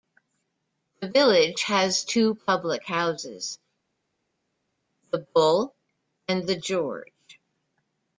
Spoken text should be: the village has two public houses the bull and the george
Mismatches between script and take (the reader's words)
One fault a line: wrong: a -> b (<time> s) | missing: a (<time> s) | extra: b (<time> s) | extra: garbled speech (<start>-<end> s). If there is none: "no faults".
no faults